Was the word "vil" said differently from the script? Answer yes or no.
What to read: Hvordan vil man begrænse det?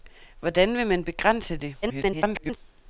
no